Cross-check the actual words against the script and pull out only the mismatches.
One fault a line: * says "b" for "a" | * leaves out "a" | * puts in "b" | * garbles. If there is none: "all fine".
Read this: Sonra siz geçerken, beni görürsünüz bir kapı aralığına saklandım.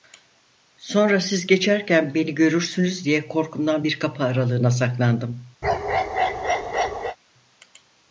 * puts in "diye korkumdan"